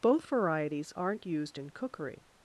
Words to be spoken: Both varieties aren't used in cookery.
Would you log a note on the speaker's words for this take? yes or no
no